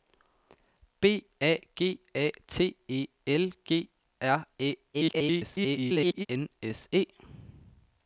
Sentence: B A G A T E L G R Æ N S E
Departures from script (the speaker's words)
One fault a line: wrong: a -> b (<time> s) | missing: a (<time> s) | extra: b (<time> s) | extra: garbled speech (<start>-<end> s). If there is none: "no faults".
extra: garbled speech (4.9-6.3 s)